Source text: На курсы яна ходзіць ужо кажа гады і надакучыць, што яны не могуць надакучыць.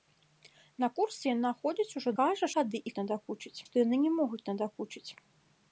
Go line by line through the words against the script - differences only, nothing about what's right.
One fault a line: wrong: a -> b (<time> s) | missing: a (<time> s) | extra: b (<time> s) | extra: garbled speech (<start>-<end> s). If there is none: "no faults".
no faults